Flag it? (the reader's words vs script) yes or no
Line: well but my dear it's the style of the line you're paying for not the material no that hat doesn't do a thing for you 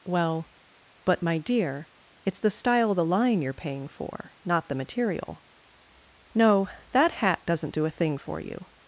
no